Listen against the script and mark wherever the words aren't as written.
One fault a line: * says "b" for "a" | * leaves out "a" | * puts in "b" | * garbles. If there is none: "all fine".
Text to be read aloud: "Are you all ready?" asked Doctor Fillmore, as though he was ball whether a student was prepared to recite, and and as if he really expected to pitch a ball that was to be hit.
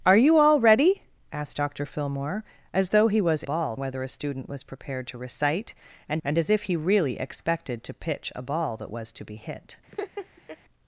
all fine